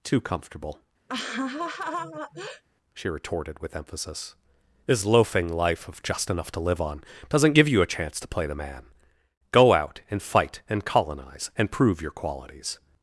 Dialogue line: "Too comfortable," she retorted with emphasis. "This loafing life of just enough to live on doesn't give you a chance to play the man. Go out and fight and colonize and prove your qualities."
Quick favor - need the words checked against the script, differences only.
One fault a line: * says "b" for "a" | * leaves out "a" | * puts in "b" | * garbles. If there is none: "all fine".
all fine